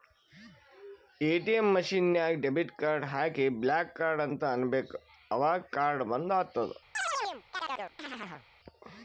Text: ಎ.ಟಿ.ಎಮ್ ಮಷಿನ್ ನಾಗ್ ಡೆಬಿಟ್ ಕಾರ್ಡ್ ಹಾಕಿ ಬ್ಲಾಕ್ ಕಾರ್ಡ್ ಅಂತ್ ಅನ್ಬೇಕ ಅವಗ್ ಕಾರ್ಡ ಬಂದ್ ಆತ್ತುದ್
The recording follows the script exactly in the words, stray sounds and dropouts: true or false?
false